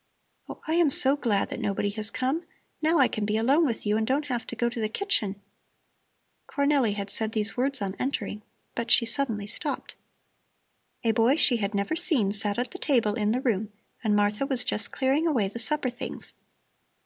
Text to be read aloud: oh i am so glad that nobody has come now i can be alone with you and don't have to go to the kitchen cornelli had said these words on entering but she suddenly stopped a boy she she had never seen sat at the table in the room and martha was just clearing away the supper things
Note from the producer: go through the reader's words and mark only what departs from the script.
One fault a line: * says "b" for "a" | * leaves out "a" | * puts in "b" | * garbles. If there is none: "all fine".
* leaves out "she"